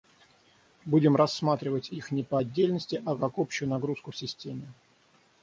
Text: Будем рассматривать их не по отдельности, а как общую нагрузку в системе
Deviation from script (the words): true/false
false